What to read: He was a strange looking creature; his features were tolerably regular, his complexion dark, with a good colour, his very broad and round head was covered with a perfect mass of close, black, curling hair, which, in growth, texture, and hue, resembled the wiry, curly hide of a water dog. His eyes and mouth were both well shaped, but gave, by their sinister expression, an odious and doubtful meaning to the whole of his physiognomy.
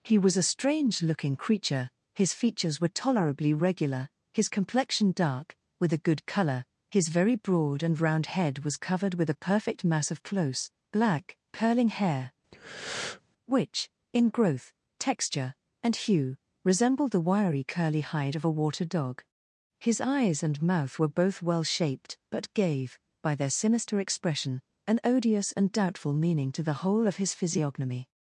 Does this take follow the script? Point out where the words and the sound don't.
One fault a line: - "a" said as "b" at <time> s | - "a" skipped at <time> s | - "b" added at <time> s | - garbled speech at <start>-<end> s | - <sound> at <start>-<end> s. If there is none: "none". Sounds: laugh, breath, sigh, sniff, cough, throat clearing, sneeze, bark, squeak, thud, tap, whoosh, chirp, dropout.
- breath at 12.5-13.2 s